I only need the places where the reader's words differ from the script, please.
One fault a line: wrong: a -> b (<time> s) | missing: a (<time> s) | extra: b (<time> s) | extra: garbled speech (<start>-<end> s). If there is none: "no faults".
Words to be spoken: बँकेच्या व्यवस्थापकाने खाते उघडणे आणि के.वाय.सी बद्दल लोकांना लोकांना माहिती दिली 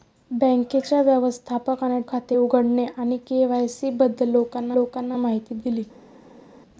no faults